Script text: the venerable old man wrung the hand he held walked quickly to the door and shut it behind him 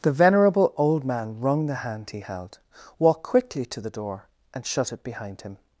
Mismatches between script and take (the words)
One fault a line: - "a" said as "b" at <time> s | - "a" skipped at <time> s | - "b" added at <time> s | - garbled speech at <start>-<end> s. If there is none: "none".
none